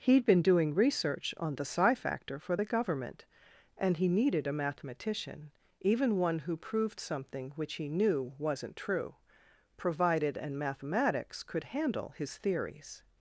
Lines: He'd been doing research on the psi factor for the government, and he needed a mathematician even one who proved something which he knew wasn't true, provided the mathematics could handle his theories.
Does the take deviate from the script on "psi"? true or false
false